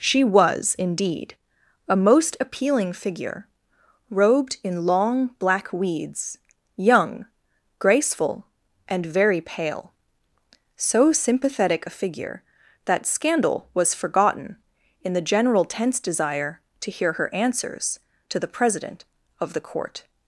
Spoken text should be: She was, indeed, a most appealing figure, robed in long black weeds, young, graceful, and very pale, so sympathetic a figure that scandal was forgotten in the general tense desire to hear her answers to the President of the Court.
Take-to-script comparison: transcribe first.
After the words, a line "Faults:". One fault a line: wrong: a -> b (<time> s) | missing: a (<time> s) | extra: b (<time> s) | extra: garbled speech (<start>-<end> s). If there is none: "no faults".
She was, indeed, a most appealing figure, robed in long black weeds, young, graceful, and very pale, so sympathetic a figure that scandal was forgotten in the general tense desire to hear her answers to the President of the Court.
Faults:
no faults